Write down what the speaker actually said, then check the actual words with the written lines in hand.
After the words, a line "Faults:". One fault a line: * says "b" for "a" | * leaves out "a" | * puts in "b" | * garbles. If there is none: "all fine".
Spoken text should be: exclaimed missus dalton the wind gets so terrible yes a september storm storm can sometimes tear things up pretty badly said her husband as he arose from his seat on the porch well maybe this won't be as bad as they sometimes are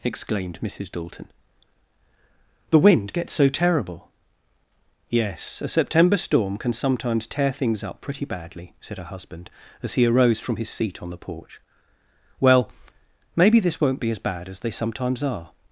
exclaimed missus dalton the wind gets so terrible yes a september storm can sometimes tear things up pretty badly said her husband as he arose from his seat on the porch well maybe this won't be as bad as they sometimes are
Faults:
* leaves out "storm"